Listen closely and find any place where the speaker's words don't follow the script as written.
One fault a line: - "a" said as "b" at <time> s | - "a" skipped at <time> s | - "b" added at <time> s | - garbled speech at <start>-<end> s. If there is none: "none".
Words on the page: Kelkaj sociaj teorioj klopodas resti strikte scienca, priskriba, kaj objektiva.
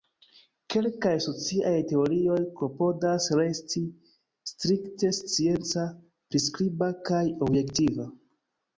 none